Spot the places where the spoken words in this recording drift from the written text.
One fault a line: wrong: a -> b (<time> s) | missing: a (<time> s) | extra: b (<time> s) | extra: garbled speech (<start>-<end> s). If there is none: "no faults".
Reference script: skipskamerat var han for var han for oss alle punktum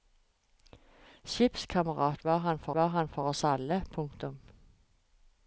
no faults